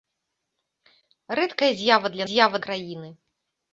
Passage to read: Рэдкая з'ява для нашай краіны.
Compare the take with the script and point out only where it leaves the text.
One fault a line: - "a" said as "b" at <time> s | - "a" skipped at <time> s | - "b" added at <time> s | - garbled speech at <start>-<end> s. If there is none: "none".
- "нашай" said as "з'ява" at 2.3 s